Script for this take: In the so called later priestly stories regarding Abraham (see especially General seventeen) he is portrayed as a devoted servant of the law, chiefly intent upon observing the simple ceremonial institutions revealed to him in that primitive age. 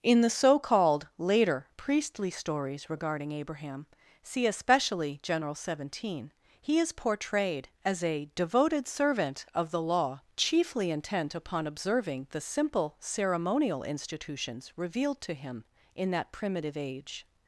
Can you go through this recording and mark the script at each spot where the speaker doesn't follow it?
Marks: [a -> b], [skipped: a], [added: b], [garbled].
In the so called later priestly stories regarding Abraham (see especially General seventeen) he is portrayed as a devoted servant of the law, chiefly intent upon observing the simple ceremonial institutions revealed to him in that primitive age.